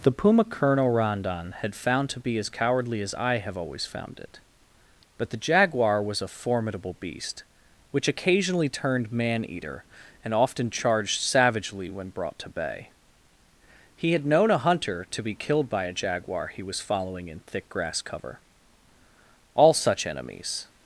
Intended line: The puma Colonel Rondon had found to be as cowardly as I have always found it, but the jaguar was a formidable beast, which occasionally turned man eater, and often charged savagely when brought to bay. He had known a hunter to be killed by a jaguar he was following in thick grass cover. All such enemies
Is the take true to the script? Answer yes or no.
yes